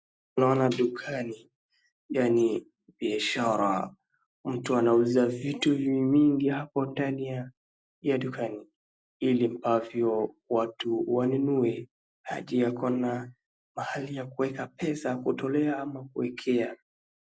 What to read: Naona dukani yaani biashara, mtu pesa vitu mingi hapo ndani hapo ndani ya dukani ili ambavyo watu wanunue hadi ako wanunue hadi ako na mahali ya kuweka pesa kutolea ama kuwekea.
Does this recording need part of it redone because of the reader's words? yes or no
yes